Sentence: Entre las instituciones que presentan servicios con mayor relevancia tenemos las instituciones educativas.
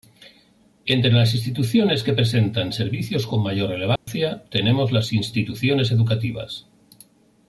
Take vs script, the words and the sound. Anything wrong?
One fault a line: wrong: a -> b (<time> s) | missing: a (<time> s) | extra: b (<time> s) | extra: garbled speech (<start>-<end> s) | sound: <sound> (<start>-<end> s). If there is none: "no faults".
sound: dropout (4.0-4.1 s)